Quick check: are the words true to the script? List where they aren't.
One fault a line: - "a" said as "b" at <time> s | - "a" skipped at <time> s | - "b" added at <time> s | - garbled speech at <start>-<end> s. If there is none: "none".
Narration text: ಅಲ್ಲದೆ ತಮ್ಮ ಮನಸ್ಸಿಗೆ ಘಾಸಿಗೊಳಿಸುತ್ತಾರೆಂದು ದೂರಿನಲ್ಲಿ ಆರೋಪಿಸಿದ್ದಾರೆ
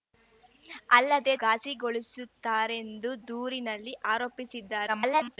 - "ತಮ್ಮ ಮನಸ್ಸಿಗೆ" skipped at 1.4 s
- garbled speech at 4.9-5.4 s